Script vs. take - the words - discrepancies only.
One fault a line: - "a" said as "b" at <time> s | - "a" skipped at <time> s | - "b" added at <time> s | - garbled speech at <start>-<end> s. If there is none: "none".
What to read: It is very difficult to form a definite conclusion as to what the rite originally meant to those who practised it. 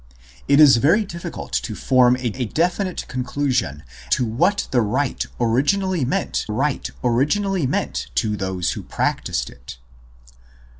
- "a" added at 2.3 s
- "as" skipped at 3.8 s
- "rite originally meant" added at 6.5 s